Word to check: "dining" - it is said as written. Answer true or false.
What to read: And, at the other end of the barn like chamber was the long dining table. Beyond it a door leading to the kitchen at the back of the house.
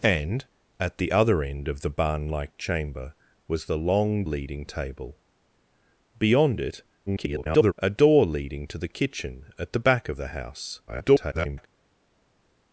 false